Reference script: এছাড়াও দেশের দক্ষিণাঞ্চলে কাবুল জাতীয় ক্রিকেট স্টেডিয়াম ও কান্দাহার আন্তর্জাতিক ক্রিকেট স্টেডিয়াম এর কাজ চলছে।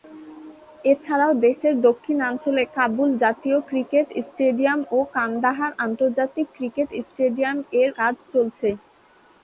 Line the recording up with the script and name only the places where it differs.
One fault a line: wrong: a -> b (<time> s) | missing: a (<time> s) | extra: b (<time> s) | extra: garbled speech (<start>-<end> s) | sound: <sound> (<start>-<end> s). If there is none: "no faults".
no faults